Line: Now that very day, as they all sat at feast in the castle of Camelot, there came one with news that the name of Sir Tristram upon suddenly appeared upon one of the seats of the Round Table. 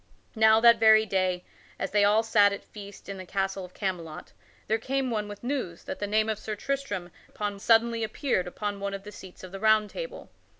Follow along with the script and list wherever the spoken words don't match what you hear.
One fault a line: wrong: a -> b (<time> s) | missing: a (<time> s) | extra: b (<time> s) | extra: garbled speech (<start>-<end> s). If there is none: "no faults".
no faults